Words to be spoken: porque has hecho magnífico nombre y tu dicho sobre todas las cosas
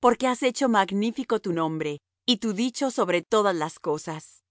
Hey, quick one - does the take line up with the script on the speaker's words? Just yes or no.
no